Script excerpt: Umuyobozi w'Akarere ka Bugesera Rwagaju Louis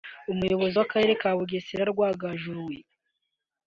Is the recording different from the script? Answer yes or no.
no